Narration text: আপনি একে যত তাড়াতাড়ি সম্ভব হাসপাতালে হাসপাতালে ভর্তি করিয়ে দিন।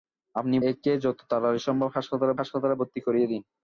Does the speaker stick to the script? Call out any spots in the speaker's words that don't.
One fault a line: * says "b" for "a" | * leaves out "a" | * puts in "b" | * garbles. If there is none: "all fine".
all fine